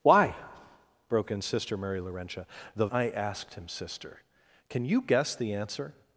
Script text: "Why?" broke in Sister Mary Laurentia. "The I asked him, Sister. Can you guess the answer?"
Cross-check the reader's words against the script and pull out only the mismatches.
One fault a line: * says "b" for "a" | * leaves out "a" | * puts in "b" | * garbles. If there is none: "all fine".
all fine